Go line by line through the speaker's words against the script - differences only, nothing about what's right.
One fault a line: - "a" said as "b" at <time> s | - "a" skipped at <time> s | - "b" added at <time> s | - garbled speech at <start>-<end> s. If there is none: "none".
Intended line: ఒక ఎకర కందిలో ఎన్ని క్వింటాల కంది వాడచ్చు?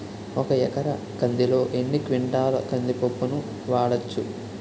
- "పప్పును" added at 2.9 s